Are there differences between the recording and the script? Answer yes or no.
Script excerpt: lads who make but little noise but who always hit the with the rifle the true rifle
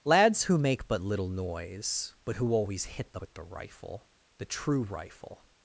no